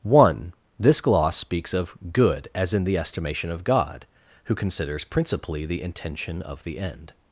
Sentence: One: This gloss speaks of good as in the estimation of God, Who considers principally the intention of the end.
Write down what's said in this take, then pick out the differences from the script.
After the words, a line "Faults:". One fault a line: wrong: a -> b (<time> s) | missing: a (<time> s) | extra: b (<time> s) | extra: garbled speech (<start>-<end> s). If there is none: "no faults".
One: This gloss speaks of good as in the estimation of God, Who considers principally the intention of the end.
Faults:
no faults